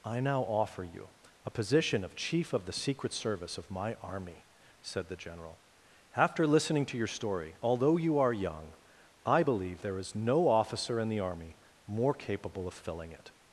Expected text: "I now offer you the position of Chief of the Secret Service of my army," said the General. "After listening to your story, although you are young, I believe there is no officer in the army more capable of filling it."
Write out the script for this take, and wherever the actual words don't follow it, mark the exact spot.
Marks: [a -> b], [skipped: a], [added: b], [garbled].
"I now offer you [the -> a] position of Chief of the Secret Service of my army," said the General. "After listening to your story, although you are young, I believe there is no officer in the army more capable of filling it."